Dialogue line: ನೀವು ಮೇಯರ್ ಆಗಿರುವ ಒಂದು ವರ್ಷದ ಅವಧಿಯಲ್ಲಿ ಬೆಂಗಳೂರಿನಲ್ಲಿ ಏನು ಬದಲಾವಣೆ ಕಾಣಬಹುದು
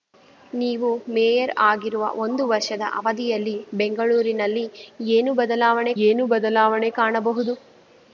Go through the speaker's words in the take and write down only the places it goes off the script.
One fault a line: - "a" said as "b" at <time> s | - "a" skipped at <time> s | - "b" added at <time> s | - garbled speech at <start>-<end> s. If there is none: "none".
- "ಏನು ಬದಲಾವಣೆ" added at 6.0 s